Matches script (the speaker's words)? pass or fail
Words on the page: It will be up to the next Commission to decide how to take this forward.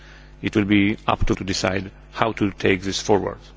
fail